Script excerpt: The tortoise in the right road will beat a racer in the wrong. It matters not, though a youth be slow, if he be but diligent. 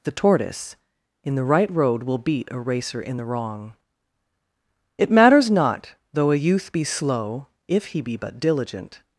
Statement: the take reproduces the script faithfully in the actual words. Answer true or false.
true